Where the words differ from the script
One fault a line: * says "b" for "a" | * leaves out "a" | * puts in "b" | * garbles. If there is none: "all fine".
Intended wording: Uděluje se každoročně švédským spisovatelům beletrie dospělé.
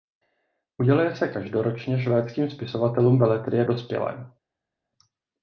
all fine